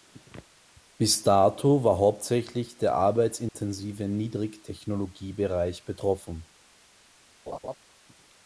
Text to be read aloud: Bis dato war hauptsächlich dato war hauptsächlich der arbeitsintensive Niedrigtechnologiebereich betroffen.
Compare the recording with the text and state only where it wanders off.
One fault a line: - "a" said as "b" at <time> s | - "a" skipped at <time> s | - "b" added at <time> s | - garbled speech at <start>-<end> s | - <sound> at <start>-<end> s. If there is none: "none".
- "dato war hauptsächlich" skipped at 2.8 s
- dropout at 3.5-3.5 s
- laugh at 7.5-7.8 s